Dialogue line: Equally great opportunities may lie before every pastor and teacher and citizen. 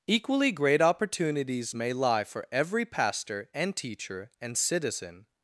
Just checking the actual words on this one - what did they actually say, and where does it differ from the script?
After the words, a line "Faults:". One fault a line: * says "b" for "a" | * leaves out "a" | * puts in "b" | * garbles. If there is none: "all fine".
Equally great opportunities may lie for every pastor and teacher and citizen.
Faults:
* says "for" for "before"